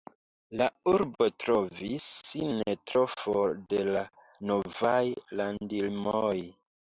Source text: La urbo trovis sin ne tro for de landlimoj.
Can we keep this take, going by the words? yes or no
no